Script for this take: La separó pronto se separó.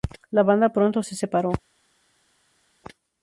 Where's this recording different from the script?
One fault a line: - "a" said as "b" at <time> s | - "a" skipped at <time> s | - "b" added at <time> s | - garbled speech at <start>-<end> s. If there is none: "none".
- "separó" said as "banda" at 0.4 s